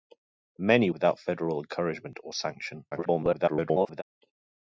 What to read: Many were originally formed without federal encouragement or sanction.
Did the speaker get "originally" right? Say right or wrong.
wrong